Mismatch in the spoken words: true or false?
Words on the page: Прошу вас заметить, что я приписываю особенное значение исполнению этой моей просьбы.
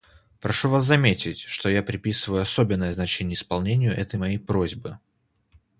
false